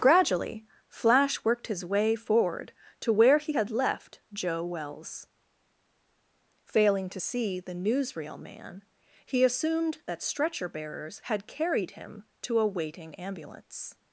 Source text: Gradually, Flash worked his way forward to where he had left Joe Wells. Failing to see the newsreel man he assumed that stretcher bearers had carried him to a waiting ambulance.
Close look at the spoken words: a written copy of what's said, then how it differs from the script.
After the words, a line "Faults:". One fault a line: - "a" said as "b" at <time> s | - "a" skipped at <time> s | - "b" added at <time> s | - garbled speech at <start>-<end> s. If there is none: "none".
Gradually, Flash worked his way forward to where he had left Joe Wells. Failing to see the newsreel man he assumed that stretcher bearers had carried him to a waiting ambulance.
Faults:
none